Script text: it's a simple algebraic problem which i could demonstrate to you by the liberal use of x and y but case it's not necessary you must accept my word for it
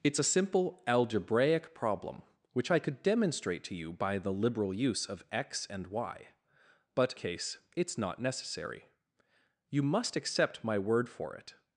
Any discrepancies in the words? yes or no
no